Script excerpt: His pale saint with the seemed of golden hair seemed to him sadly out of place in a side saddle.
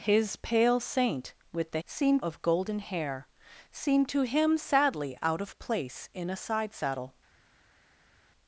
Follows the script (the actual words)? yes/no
yes